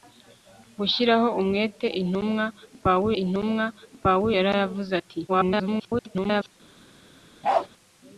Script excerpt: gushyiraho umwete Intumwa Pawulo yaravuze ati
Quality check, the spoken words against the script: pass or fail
fail